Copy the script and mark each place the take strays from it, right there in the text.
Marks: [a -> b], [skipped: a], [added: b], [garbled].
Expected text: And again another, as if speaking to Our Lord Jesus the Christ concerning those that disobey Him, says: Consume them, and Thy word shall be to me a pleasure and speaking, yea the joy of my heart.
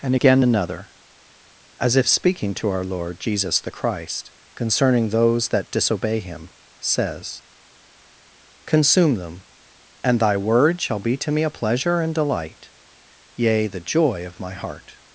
And again another, as if speaking to Our Lord Jesus the Christ concerning those that disobey Him, says: Consume them, and Thy word shall be to me a pleasure and [speaking, -> delight] yea the joy of my heart.